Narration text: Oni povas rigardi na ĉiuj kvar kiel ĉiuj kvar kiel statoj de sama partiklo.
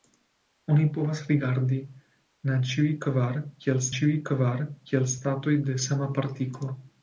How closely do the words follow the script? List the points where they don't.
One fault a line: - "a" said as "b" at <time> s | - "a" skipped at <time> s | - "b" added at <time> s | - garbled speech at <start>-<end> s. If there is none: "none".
none